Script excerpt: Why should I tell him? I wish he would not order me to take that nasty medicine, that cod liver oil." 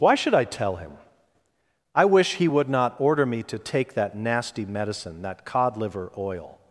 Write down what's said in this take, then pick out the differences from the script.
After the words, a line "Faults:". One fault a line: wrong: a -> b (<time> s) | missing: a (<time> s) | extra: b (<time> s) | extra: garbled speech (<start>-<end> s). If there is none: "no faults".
Why should I tell him? I wish he would not order me to take that nasty medicine, that cod liver oil."
Faults:
no faults